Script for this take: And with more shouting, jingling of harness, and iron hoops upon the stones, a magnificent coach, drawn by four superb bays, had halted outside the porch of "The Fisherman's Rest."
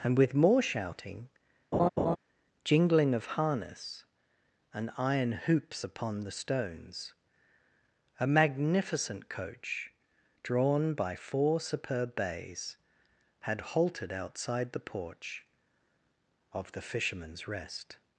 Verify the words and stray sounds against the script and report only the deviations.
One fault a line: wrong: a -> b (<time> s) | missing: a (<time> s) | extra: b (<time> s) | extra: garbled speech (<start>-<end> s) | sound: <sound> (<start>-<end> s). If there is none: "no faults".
sound: laugh (1.7-2.2 s)